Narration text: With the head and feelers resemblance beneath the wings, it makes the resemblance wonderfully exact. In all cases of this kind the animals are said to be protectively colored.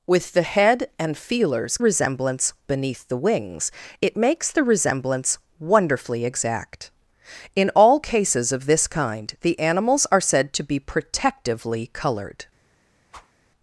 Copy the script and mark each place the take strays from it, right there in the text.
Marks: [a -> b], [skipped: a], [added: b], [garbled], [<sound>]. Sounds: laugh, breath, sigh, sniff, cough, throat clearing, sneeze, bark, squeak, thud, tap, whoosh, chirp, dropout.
With the head and feelers resemblance beneath the wings, it makes the resemblance wonderfully exact. In all cases of this kind the animals are said to be protectively colored. [whoosh]